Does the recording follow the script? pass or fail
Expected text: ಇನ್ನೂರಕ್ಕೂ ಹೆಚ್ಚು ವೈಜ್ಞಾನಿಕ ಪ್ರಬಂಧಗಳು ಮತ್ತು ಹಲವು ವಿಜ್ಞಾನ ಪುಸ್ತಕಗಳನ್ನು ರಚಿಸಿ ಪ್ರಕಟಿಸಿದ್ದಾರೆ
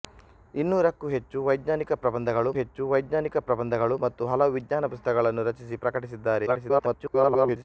fail